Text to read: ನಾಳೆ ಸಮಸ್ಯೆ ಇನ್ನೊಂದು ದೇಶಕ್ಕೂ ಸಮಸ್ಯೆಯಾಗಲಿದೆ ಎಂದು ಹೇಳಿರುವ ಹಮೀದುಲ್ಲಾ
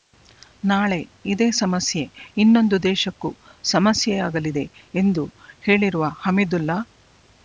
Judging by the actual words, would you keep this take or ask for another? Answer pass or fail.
fail